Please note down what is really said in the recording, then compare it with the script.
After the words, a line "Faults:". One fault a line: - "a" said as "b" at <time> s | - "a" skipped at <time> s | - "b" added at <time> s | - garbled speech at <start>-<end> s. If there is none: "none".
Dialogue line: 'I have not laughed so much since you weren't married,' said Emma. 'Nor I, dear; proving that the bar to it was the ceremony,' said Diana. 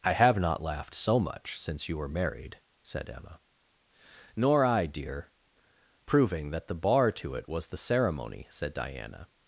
'I have not laughed so much since you were married,' said Emma. 'Nor I, dear; proving that the bar to it was the ceremony,' said Diana.
Faults:
- "weren't" said as "were" at 2.0 s